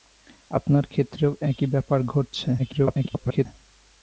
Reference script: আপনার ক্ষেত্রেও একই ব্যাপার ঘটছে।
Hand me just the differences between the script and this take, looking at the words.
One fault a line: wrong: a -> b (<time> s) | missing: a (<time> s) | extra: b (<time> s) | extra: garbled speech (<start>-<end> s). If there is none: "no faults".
extra: garbled speech (2.6-3.5 s)